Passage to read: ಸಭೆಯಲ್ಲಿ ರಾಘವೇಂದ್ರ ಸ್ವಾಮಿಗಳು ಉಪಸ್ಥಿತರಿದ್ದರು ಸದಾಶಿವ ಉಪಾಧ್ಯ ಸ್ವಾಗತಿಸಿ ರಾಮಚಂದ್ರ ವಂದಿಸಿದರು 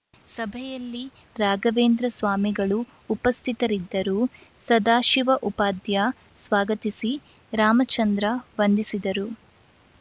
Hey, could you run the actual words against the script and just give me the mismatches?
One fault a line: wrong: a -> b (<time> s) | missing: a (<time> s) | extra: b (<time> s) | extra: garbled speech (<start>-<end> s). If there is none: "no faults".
no faults